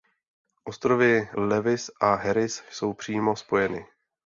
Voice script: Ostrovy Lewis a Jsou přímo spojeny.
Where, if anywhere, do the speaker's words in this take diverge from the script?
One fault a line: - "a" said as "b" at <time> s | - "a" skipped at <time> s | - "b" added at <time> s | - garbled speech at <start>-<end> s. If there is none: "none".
- "Harris" added at 2.1 s